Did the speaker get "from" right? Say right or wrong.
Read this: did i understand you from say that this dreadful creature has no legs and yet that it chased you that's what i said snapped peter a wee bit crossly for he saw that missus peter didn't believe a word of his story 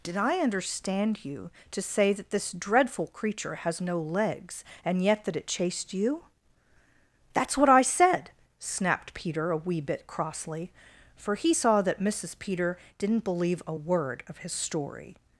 wrong